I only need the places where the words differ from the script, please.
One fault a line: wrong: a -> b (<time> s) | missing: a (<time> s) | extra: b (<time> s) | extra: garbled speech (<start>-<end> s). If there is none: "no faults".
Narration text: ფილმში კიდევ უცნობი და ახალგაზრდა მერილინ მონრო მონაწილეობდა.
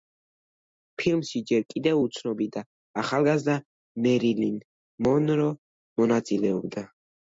extra: ჯერ (1.5 s)